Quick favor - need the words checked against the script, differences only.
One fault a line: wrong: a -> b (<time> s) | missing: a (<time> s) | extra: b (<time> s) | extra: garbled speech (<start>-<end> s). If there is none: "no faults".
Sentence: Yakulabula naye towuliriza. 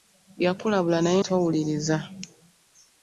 no faults